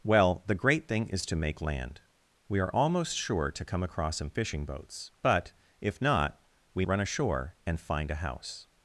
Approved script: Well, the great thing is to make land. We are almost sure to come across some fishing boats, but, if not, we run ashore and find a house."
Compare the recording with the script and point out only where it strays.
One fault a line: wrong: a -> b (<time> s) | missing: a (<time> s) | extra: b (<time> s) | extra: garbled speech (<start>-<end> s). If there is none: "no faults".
no faults